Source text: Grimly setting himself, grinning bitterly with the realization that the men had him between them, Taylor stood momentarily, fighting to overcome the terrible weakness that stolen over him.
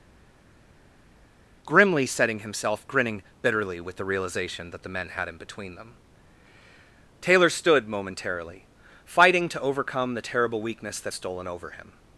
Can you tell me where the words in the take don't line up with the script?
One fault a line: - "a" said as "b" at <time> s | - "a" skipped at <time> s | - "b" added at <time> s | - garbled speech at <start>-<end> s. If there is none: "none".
none